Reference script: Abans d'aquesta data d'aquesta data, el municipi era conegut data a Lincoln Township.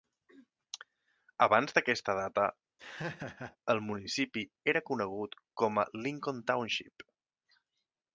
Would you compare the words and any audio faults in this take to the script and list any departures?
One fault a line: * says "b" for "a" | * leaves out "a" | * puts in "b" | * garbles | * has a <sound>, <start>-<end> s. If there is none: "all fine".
* leaves out "d'aquesta data"
* has a laugh, 2.8-3.6 s
* says "com" for "data"